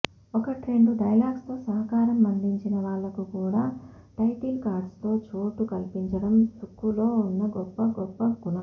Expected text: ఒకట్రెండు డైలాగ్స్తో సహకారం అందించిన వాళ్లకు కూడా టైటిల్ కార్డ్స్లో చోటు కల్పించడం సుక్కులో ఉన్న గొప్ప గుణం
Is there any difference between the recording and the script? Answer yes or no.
yes